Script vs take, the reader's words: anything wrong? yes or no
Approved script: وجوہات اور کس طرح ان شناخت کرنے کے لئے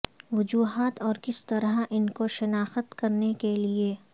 yes